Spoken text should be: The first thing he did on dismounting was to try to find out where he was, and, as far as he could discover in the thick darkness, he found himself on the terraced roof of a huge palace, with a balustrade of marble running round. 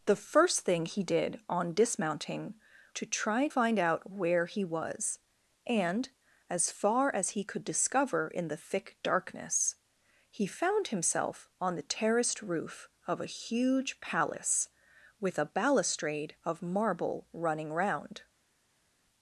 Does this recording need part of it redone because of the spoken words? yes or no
yes